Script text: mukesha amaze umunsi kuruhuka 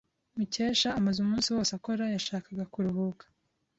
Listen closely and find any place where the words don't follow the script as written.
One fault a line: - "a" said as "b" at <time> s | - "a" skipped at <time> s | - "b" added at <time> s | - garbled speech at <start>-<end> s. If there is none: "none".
- "wose akora yashakaga" added at 1.6 s